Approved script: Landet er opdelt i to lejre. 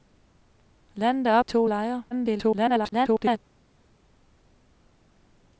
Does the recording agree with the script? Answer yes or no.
no